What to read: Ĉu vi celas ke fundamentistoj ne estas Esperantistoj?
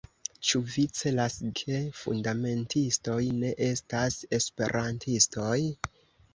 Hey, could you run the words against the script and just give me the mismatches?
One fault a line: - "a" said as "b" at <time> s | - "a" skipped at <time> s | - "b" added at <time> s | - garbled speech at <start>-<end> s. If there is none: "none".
none